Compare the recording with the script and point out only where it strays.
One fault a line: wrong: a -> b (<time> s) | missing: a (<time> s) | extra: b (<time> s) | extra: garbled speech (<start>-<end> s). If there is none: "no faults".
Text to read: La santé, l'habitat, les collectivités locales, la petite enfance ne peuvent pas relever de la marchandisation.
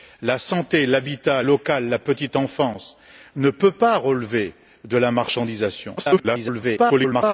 missing: les collectivités (1.4 s)
extra: garbled speech (6.0-7.3 s)